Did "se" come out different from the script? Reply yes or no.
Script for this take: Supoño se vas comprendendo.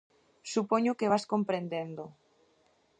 yes